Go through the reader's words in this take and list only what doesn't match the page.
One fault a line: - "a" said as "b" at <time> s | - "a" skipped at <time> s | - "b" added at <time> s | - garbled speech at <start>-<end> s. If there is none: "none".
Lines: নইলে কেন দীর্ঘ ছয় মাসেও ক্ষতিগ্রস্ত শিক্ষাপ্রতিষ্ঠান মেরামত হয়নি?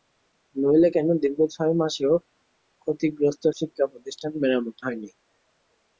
none